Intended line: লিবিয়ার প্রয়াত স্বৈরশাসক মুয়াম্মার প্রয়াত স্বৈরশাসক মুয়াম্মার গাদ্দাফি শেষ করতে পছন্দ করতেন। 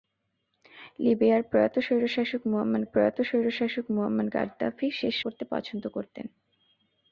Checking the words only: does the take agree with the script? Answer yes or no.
yes